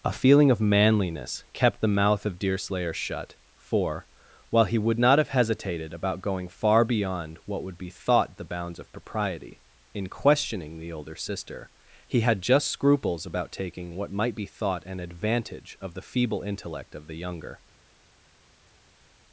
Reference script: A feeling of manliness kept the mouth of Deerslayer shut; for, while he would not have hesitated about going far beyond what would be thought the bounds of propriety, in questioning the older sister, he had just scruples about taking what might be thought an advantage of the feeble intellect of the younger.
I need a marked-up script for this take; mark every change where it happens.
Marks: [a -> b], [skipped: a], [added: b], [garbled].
A feeling of manliness kept the mouth of Deerslayer shut; for, while he would not have hesitated about going far beyond what would be thought the bounds of propriety, in questioning the older sister, he had just scruples about taking what might be thought an advantage of the feeble intellect of the younger.